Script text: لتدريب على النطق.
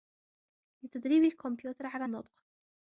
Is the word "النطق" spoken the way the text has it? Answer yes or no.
yes